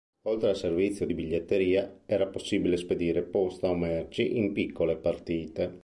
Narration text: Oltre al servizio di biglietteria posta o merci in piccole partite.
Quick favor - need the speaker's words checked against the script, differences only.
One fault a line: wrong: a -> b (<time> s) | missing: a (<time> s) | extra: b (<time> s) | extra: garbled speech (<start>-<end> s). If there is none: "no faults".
extra: era possibile spedire (2.0 s)